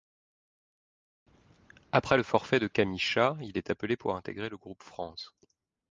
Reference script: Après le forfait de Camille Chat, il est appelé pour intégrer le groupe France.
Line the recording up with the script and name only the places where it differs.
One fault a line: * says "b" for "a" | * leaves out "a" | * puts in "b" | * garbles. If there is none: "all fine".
all fine